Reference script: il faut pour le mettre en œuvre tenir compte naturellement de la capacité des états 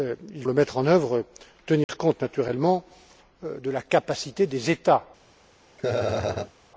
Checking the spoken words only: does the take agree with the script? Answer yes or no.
no